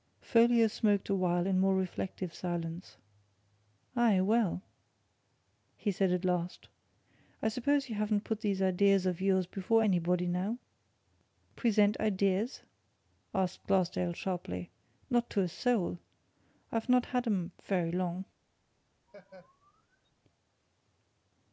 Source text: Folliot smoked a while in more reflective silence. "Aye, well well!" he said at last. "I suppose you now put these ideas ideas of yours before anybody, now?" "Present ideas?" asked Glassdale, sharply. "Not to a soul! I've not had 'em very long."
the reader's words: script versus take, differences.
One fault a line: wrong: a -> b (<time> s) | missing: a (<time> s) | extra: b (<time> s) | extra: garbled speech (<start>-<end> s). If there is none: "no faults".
missing: well (4.6 s)
wrong: now -> haven't (7.9 s)
missing: ideas (9.1 s)